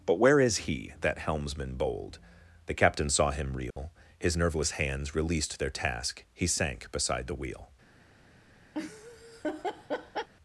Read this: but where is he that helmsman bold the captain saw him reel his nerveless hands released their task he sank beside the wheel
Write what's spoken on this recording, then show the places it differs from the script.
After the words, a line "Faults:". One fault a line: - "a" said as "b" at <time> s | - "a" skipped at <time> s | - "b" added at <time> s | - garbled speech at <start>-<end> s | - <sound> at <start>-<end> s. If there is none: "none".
but where is he that helmsman bold the captain saw him reel his nerveless hands released their task he sank beside the wheel
Faults:
- dropout at 3.7-3.8 s
- laugh at 8.7-10.3 s